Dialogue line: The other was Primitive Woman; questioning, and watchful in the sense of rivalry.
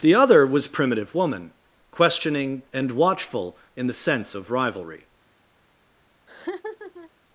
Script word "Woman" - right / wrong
right